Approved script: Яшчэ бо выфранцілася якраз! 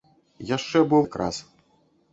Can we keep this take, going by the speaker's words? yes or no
no